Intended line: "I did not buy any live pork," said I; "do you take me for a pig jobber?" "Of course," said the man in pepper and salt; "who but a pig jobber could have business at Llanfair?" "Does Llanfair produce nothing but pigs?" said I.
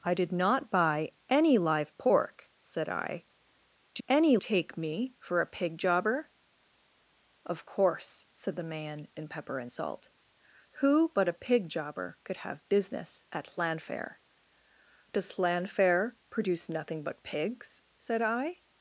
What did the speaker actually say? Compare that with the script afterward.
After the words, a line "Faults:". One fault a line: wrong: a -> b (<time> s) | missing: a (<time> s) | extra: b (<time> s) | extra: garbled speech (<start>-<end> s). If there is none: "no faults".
"I did not buy any live pork," said I; "do any take me for a pig jobber?" "Of course," said the man in pepper and salt; "who but a pig jobber could have business at Llanfair?" "Does Llanfair produce nothing but pigs?" said I.
Faults:
wrong: you -> any (4.1 s)